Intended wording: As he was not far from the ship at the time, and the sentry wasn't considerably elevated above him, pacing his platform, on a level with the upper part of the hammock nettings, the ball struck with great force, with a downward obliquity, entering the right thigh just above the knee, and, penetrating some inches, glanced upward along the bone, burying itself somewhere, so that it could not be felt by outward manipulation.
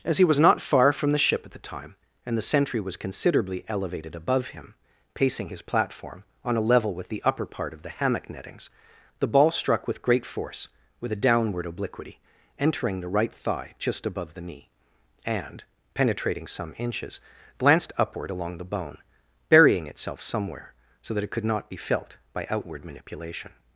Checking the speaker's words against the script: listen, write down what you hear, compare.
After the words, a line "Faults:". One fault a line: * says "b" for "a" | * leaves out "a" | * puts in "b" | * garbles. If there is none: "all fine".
As he was not far from the ship at the time, and the sentry was considerably elevated above him, pacing his platform, on a level with the upper part of the hammock nettings, the ball struck with great force, with a downward obliquity, entering the right thigh just above the knee, and, penetrating some inches, glanced upward along the bone, burying itself somewhere, so that it could not be felt by outward manipulation.
Faults:
* says "was" for "wasn't"